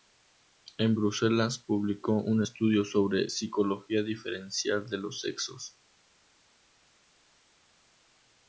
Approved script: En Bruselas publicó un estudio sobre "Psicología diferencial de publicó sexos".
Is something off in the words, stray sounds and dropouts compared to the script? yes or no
yes